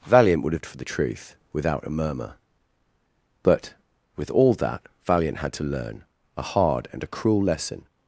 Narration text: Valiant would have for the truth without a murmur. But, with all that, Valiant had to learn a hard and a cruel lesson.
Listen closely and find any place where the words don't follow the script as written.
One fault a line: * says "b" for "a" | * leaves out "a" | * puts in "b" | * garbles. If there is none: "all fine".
all fine